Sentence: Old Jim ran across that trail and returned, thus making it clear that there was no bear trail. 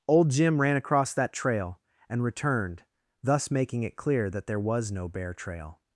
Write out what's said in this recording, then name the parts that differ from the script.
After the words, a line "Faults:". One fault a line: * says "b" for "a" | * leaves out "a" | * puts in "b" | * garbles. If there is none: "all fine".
Old Jim ran across that trail and returned, thus making it clear that there was no bear trail.
Faults:
all fine